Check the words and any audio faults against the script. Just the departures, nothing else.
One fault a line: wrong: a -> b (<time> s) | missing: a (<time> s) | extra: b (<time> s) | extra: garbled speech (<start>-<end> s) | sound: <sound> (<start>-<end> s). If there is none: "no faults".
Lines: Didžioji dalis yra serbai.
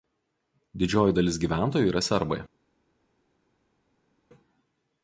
extra: gyventojų (1.4 s)